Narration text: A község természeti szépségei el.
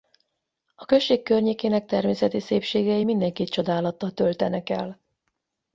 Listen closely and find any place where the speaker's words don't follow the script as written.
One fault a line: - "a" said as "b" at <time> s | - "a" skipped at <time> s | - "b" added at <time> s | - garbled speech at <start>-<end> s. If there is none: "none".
- "környékének" added at 1.2 s
- "mindenkit csodálattal töltenek" added at 3.0 s